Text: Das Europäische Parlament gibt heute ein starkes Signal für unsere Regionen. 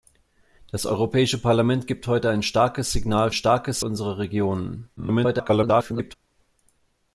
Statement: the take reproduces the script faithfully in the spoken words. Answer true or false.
false